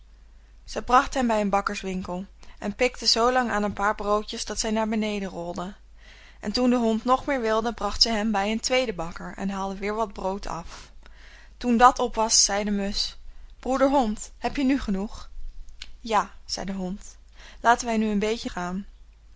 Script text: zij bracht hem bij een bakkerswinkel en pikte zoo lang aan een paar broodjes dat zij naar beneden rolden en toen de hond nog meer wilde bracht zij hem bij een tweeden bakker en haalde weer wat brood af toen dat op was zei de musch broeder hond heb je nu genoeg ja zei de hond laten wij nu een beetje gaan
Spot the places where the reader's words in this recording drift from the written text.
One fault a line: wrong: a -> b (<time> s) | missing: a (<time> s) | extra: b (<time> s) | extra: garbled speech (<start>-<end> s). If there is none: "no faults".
no faults